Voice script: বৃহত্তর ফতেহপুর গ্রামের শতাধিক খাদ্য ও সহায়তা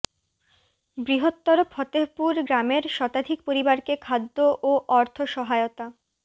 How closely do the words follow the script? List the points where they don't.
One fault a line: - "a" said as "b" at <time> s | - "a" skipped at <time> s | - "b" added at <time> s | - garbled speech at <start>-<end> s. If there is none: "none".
- "পরিবারকে" added at 3.5 s
- "অর্থ" added at 4.9 s